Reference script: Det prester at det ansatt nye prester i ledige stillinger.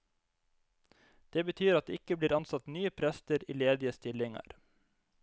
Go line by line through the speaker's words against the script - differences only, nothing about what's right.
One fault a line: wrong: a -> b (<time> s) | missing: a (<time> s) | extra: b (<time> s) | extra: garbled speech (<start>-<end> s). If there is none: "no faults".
wrong: prester -> betyr (1.5 s)
extra: ikke blir (2.0 s)